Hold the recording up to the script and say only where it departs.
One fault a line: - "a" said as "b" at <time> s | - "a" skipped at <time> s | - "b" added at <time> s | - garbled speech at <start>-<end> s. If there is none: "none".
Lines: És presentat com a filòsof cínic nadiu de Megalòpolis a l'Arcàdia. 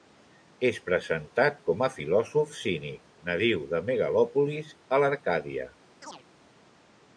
none